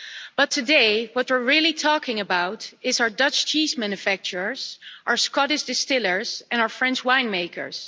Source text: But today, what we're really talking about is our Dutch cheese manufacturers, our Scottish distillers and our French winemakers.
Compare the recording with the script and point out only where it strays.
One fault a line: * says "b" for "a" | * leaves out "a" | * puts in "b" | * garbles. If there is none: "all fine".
all fine